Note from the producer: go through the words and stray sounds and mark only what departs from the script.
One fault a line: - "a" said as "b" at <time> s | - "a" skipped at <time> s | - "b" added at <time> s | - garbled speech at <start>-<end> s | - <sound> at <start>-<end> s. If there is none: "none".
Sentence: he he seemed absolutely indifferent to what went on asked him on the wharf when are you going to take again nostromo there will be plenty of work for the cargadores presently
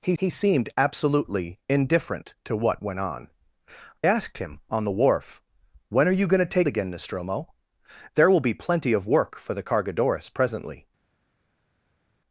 none